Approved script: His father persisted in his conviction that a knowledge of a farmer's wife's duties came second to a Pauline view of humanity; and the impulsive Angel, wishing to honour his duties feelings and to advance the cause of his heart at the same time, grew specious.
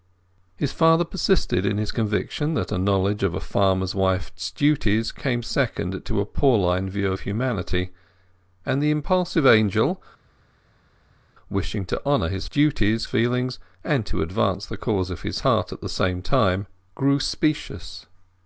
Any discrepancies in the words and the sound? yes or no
no